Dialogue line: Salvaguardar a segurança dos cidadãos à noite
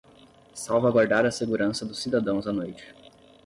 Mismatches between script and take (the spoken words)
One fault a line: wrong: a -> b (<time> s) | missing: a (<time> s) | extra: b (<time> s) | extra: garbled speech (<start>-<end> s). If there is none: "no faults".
no faults